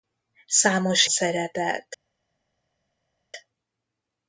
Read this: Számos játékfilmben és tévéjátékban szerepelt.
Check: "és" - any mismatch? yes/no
yes